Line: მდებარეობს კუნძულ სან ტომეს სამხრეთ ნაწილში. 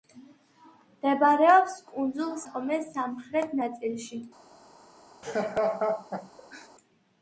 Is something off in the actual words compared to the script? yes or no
yes